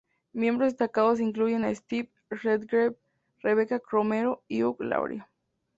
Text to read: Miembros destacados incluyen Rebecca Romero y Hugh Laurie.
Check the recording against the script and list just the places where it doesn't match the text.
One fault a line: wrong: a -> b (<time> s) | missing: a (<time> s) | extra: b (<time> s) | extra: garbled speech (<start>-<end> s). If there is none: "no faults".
extra: a Steve Redgrave (1.6 s)